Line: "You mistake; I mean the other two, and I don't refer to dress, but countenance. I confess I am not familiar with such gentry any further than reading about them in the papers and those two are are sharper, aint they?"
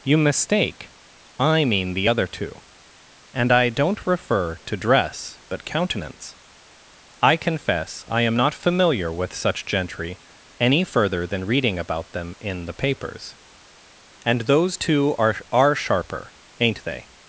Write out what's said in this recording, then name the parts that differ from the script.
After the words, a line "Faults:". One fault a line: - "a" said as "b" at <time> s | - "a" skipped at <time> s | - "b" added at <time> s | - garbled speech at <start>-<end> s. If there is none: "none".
"You mistake; I mean the other two, and I don't refer to dress, but countenance. I confess I am not familiar with such gentry any further than reading about them in the papers and those two are are sharper, aint they?"
Faults:
none